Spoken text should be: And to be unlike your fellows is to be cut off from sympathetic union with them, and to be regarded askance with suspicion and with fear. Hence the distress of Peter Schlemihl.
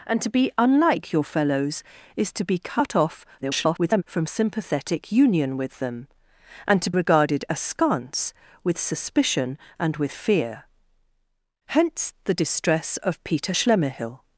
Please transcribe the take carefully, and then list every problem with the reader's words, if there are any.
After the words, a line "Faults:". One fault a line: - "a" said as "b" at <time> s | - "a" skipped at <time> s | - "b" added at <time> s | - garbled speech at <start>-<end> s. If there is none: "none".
And to be unlike your fellows is to be cut off [garbled] from sympathetic union with them, and to regarded askance with suspicion and with fear. Hence the distress of Peter Schlemihl.
Faults:
- garbled speech at 3.4-4.0 s
- "be" skipped at 6.9 s